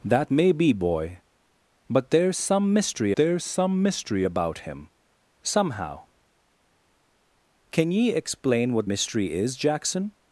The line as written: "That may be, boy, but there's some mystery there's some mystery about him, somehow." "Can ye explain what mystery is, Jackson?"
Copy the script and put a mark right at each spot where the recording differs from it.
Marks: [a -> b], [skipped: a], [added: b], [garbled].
"That may be, boy, but there's some mystery there's some mystery about him, somehow." "Can ye explain what mystery is, Jackson?"